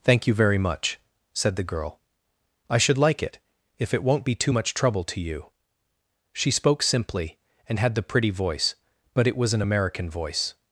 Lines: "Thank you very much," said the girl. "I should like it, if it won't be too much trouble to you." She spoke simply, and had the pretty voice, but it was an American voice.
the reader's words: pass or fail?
pass